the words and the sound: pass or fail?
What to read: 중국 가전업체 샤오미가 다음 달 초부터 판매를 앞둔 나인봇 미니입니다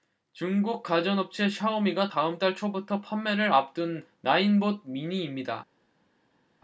pass